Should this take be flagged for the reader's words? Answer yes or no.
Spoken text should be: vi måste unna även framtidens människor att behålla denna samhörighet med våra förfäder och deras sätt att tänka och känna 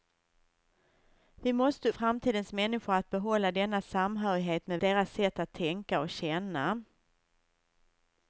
yes